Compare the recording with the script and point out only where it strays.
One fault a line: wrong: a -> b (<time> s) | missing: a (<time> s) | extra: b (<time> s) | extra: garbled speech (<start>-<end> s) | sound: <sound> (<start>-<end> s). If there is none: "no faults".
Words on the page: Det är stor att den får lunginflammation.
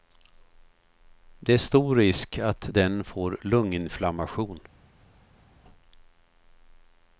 extra: risk (1.9 s)